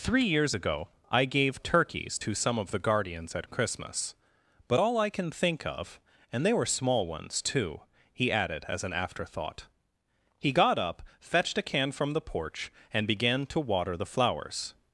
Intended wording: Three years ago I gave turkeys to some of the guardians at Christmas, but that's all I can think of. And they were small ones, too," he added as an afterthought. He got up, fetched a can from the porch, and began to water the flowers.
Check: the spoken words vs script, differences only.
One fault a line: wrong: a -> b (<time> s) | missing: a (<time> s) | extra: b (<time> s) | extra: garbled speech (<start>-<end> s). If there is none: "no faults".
missing: that's (4.8 s)